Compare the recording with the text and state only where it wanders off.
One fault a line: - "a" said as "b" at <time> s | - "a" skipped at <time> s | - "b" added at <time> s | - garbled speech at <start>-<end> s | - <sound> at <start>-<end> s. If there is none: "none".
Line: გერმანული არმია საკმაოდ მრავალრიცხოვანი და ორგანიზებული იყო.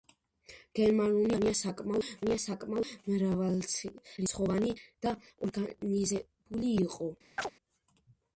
- "არმია საკმაოდ" added at 2.2 s
- chirp at 7.4-7.5 s